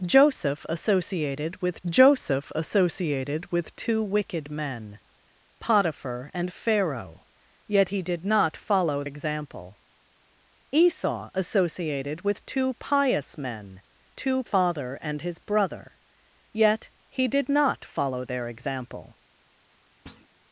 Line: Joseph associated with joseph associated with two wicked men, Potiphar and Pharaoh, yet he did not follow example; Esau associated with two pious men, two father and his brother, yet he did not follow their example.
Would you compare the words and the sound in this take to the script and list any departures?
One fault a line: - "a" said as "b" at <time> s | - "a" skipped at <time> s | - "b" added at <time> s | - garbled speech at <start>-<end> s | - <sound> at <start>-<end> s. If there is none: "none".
- thud at 20.1-20.3 s